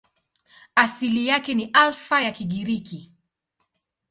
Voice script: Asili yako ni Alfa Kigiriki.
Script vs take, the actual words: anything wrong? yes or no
yes